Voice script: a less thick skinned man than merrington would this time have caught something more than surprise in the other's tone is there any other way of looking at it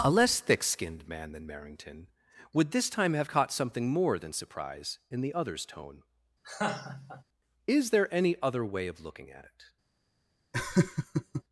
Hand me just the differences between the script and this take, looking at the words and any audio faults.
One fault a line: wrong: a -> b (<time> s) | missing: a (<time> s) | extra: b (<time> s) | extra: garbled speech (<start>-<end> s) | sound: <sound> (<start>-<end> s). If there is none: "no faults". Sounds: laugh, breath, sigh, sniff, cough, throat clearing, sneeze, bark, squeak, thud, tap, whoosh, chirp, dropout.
sound: laugh (6.4-7.2 s)
sound: laugh (10.5-11.4 s)